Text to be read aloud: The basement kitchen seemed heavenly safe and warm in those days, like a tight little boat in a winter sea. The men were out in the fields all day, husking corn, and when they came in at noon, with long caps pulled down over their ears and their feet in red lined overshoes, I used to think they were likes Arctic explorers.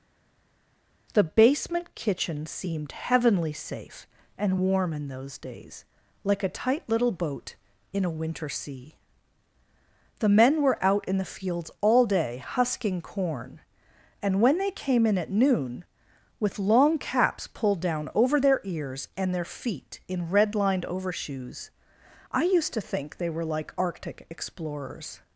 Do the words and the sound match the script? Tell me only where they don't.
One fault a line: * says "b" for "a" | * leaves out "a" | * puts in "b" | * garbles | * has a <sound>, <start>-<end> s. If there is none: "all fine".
* says "like" for "likes"